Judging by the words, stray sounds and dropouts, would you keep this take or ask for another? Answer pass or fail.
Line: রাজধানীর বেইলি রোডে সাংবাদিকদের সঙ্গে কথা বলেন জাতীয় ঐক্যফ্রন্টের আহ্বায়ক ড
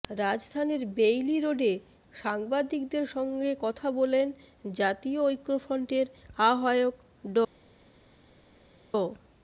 pass